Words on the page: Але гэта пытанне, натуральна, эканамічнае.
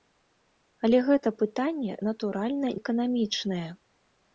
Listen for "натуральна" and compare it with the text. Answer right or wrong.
right